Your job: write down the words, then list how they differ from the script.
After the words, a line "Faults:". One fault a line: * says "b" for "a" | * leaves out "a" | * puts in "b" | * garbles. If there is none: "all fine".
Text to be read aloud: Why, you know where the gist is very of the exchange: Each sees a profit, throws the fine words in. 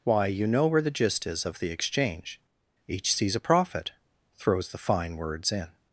Why, you know where the gist is of the exchange: Each sees a profit, throws the fine words in.
Faults:
* leaves out "very"